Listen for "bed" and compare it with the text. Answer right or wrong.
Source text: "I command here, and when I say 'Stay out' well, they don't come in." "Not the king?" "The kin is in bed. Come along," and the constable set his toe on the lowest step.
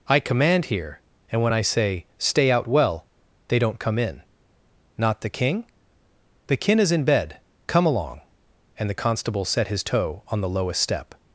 right